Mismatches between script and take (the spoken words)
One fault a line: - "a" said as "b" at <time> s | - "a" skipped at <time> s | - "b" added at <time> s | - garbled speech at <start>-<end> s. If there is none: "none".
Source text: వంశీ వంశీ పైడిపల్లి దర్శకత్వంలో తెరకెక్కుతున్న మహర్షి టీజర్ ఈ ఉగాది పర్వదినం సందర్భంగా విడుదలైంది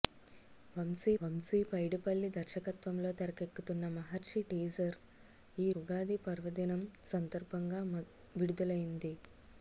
none